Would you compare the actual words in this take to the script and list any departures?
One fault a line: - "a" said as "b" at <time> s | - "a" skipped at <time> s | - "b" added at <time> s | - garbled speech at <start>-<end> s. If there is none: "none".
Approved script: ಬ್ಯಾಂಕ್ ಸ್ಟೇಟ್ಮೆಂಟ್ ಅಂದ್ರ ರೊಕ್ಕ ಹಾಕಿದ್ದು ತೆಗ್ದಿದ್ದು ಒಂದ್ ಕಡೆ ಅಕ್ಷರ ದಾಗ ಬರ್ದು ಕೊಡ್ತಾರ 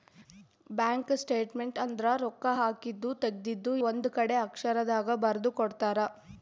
none